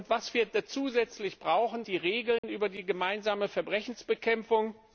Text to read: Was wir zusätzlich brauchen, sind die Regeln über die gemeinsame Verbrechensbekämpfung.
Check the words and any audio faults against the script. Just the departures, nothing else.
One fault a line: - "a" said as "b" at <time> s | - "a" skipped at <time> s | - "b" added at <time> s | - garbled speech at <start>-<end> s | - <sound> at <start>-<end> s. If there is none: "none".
- "sind" skipped at 1.9 s
- dropout at 2.4-2.4 s